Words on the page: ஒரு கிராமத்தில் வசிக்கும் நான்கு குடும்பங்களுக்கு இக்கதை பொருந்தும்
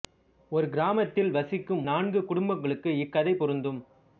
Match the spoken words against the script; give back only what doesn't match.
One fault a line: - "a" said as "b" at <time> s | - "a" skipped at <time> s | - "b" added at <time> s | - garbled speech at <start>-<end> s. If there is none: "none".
none